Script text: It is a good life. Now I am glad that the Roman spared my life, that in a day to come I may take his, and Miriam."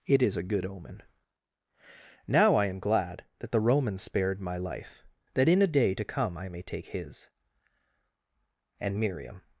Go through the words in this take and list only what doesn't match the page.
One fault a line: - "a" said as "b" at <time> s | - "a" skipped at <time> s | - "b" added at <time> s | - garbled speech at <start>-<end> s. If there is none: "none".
- "life" said as "omen" at 0.7 s